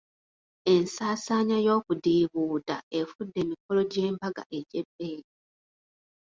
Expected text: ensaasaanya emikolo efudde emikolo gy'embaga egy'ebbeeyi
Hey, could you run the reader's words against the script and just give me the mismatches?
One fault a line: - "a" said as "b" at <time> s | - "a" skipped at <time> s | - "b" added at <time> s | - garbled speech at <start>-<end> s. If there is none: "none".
- "emikolo" said as "y'okudiibuuda" at 1.6 s